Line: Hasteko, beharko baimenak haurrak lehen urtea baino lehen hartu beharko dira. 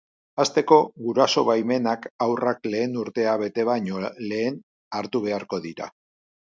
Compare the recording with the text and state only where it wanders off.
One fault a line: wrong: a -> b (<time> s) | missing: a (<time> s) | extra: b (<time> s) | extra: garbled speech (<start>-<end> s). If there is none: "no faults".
wrong: beharko -> guraso (1.1 s)
extra: bete (3.5 s)